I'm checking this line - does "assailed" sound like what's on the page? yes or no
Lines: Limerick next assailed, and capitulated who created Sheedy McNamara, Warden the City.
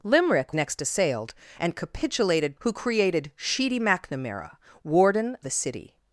yes